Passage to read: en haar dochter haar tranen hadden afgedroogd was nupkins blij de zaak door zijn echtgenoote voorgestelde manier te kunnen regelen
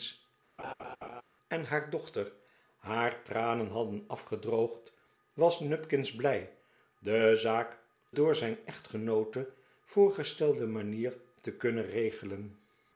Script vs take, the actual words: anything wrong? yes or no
no